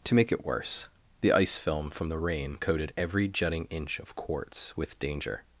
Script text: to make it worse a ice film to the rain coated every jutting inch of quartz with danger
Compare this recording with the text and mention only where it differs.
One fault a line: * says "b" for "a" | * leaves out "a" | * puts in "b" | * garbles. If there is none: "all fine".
* says "the" for "a"
* says "from" for "to"